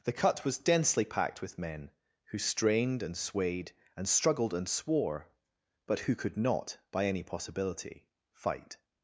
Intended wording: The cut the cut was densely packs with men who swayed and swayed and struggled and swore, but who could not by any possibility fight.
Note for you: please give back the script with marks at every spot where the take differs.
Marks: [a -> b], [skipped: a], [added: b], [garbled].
The cut [skipped: the cut] was densely [packs -> packed] with men who [swayed -> strained] and swayed and struggled and swore, but who could not by any possibility fight.